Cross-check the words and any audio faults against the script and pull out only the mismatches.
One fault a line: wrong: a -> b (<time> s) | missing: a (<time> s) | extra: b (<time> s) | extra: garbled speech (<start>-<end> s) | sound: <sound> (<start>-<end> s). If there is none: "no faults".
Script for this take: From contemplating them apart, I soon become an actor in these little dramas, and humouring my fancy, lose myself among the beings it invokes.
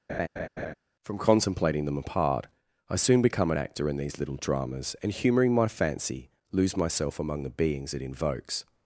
sound: laugh (0.1-0.7 s)